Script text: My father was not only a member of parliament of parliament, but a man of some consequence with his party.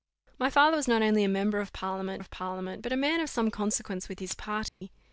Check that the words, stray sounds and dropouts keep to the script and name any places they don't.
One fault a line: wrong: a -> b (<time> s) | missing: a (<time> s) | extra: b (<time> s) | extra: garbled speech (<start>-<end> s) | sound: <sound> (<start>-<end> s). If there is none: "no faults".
sound: dropout (4.7-4.8 s)